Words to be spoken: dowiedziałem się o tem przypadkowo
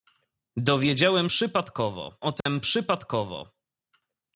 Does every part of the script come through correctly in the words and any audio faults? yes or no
no